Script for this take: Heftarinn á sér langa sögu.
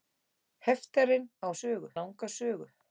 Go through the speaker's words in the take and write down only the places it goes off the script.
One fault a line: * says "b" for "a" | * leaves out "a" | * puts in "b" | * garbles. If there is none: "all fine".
* says "sögu" for "sér"